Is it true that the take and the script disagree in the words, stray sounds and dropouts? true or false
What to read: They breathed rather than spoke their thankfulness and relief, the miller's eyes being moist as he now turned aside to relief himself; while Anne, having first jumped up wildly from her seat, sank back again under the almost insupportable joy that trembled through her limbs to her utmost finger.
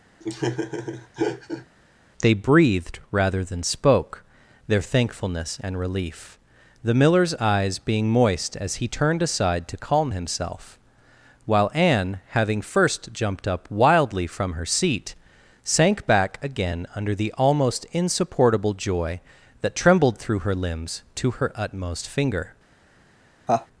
true